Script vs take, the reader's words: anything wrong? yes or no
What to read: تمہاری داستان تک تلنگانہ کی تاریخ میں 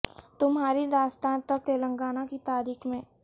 no